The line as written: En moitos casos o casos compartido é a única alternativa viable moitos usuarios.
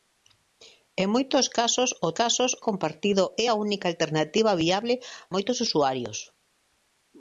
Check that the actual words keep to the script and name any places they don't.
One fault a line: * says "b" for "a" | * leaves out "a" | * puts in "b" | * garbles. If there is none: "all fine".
all fine